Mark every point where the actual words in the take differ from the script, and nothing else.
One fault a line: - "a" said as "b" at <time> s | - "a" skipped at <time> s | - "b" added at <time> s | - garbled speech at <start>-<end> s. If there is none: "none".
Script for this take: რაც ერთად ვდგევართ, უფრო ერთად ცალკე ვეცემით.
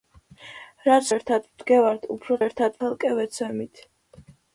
none